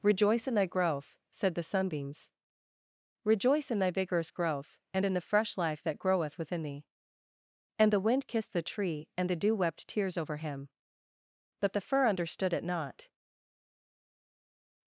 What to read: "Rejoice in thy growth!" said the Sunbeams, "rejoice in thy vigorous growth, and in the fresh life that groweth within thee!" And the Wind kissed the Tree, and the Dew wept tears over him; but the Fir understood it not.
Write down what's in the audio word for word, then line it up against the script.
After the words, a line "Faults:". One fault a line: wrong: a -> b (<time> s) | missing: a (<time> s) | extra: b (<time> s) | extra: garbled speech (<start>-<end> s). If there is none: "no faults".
"Rejoice in thy growth!" said the Sunbeams, "rejoice in thy vigorous growth, and in the fresh life that groweth within thee!" And the Wind kissed the Tree, and the Dew wept tears over him; but the Fir understood it not.
Faults:
no faults